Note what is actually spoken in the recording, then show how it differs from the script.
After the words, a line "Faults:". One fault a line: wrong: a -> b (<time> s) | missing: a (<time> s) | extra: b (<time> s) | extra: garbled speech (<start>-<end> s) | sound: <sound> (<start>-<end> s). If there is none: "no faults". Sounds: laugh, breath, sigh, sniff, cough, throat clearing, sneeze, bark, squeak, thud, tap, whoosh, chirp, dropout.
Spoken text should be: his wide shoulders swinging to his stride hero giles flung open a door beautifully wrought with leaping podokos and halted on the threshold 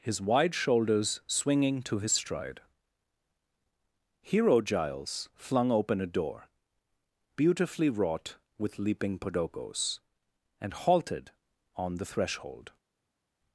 his wide shoulders swinging to his stride hero giles flung open a door beautifully wrought with leaping podokos and halted on the threshold
Faults:
no faults